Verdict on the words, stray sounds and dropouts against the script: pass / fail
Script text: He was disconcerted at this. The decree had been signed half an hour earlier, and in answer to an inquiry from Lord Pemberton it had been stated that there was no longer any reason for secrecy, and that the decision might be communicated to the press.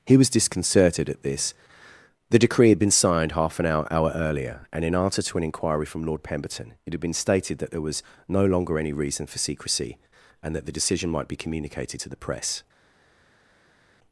fail